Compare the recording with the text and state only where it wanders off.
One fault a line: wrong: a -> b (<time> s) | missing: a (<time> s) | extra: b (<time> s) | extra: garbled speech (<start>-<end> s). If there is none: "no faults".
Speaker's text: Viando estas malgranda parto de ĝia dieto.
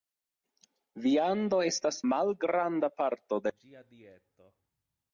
no faults